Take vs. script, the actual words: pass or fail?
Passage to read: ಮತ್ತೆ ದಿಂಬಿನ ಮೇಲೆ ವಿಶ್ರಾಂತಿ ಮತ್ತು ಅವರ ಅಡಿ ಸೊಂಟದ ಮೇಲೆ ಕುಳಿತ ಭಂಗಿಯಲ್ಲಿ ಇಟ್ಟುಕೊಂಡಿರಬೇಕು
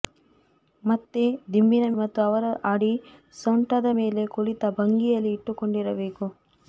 fail